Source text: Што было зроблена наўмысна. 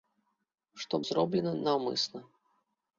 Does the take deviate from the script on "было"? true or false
true